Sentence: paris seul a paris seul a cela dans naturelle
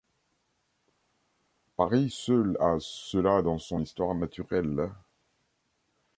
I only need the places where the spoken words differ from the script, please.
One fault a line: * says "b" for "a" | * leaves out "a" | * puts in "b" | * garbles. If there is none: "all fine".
* says "cela dans son histoire" for "paris seul a cela dans"